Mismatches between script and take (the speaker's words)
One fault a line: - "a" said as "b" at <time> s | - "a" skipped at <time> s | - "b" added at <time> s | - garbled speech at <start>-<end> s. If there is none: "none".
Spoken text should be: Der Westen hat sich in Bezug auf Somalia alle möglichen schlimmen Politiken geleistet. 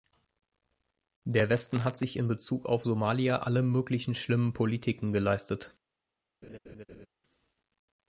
none